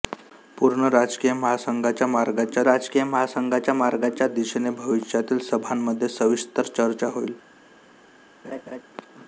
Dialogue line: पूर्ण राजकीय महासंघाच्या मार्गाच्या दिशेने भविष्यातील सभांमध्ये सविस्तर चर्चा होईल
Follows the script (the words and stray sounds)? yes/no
no